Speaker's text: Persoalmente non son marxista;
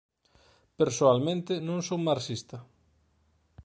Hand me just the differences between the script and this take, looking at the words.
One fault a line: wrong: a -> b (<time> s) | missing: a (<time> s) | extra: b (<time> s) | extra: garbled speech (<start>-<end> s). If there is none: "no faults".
no faults